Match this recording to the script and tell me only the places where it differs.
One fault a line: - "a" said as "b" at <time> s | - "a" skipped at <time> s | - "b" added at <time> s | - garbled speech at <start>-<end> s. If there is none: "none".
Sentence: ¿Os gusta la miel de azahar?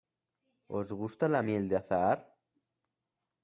none